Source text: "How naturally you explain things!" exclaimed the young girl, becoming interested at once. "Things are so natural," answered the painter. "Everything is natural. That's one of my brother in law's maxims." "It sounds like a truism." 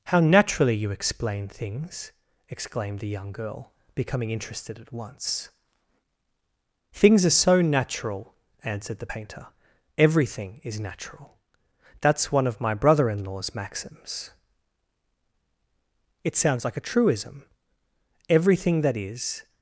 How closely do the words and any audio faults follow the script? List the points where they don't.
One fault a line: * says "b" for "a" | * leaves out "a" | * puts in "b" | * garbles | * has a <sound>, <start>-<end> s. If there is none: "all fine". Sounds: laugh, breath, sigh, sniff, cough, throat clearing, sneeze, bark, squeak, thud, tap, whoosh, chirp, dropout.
* puts in "Everything that is"